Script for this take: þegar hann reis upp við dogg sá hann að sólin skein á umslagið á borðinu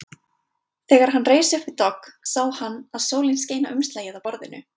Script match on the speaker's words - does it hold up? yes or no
yes